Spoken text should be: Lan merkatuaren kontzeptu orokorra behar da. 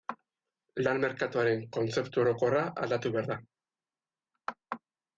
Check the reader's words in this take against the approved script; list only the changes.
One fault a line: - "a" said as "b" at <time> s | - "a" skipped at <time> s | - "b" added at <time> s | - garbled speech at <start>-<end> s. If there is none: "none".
- "aldatu" added at 2.9 s